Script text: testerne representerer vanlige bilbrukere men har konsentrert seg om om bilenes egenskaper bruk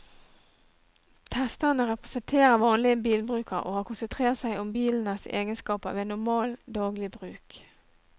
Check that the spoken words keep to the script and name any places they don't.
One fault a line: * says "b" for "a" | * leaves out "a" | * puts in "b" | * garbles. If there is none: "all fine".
* says "og" for "men"
* leaves out "om"
* puts in "ved normal daglig"